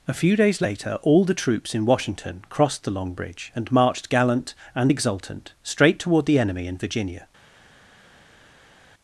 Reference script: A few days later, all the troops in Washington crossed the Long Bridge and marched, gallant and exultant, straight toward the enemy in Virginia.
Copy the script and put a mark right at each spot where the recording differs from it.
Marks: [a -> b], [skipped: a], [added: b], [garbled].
A few days later, all the troops in Washington crossed the Long Bridge and marched, gallant and exultant, straight toward the enemy in Virginia.